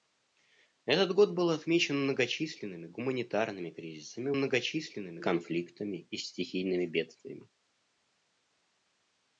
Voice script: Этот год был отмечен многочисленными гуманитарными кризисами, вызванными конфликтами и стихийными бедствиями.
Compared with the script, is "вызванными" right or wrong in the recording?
wrong